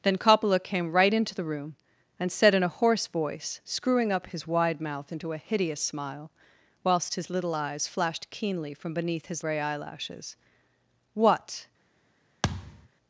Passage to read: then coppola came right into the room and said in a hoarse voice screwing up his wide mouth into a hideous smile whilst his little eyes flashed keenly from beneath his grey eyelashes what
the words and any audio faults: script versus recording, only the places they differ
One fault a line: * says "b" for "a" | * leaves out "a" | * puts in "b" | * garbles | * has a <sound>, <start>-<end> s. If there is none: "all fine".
* has a thud, 12.4-12.9 s